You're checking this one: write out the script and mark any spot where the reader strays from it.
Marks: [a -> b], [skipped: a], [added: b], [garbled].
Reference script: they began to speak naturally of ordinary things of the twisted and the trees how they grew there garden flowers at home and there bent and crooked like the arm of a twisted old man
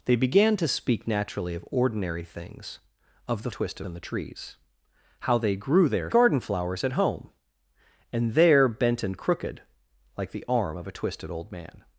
they began to speak naturally of ordinary things of the twisted and the trees how they grew there garden flowers at home and there bent and crooked like the arm of a twisted old man